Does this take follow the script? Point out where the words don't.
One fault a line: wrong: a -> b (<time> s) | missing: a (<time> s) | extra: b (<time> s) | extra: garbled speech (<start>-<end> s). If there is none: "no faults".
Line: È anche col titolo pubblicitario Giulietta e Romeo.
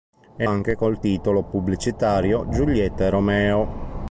no faults